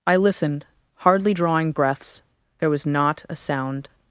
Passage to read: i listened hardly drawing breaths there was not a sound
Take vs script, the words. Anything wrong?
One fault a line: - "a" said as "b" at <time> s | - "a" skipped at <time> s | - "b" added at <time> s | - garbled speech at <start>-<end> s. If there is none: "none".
none